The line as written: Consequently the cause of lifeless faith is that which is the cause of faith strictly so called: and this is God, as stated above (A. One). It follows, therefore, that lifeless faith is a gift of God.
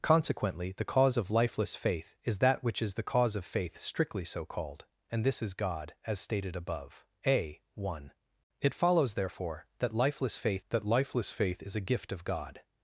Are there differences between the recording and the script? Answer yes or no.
yes